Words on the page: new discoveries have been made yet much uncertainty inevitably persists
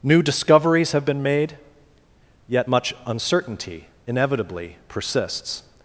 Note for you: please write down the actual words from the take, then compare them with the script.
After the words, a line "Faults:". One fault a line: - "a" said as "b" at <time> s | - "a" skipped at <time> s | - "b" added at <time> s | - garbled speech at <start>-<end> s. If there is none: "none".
new discoveries have been made yet much uncertainty inevitably persists
Faults:
none